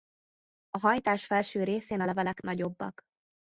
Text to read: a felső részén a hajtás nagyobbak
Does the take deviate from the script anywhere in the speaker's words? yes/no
yes